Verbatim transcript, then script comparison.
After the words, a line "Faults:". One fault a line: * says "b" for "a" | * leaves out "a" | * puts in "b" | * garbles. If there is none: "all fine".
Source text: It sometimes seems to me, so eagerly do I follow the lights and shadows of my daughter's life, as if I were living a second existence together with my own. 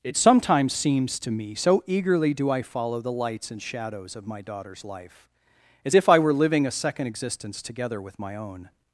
It sometimes seems to me, so eagerly do I follow the lights and shadows of my daughter's life, as if I were living a second existence together with my own.
Faults:
all fine